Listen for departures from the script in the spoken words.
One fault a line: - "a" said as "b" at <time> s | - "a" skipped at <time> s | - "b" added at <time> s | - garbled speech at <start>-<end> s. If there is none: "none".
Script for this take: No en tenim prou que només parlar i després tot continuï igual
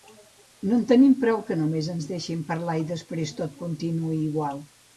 - "ens deixin" added at 1.9 s